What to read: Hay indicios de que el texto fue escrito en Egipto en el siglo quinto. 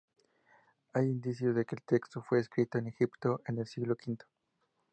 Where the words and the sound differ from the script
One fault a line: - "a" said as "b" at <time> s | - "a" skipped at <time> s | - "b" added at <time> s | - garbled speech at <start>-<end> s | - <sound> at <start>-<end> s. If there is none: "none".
none